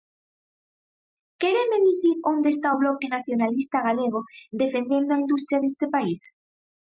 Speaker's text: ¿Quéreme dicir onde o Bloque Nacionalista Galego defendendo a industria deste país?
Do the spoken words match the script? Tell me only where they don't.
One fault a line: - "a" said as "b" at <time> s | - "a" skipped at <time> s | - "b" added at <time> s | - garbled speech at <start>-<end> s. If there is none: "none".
- "está" added at 2.5 s